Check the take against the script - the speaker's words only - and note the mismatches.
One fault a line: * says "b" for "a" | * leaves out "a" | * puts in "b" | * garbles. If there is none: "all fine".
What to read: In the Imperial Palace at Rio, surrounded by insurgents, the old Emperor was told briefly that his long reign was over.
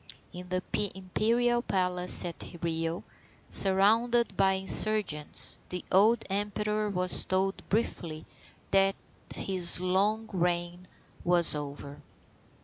all fine